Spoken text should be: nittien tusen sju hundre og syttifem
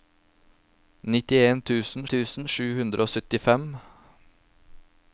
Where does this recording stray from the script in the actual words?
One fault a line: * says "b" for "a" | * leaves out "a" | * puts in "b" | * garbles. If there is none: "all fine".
* puts in "tusen"